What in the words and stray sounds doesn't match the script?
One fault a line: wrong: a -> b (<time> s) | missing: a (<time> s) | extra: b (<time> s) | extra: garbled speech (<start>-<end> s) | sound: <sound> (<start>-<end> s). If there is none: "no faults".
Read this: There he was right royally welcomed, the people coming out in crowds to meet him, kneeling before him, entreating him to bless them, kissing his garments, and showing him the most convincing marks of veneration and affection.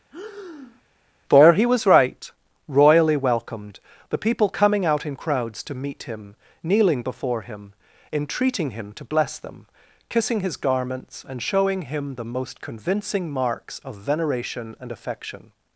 sound: breath (0.1-0.8 s)
wrong: There -> For (1.3 s)